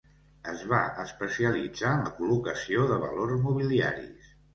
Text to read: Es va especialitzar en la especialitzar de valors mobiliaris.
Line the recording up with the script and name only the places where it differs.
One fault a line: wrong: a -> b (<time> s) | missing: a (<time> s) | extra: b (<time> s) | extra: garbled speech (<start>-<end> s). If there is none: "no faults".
wrong: especialitzar -> col·locació (2.2 s)